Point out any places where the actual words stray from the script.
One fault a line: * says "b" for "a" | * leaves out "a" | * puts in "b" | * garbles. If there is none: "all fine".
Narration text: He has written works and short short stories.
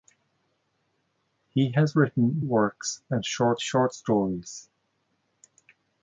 all fine